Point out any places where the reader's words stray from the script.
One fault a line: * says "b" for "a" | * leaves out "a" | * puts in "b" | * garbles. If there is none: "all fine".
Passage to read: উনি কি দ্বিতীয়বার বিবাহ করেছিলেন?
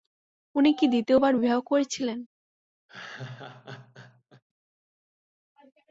all fine